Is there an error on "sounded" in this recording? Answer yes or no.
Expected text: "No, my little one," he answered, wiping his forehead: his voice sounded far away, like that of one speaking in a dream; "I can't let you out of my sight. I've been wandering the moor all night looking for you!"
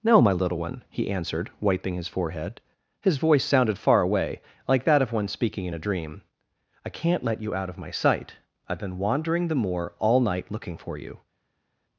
no